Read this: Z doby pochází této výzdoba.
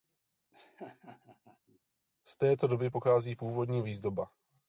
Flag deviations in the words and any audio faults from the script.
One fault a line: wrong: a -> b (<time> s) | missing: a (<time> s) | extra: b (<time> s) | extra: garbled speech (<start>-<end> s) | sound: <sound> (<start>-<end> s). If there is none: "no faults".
sound: laugh (0.5-1.8 s)
extra: této (2.4 s)
wrong: této -> původní (3.3 s)